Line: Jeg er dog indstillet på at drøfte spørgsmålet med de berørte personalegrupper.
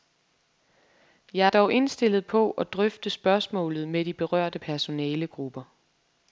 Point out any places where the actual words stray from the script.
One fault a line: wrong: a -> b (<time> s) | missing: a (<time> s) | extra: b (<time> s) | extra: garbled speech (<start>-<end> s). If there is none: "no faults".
no faults